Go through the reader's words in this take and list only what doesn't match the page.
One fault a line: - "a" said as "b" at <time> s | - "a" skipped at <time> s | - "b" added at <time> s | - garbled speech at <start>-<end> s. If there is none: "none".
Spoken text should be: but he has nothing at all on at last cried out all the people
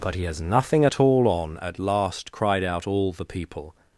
none